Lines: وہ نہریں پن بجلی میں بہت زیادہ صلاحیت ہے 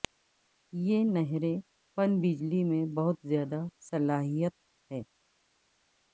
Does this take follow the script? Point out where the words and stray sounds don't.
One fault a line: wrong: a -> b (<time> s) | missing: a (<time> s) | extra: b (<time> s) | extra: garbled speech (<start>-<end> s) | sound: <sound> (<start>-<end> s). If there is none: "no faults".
wrong: وہ -> یہ (0.7 s)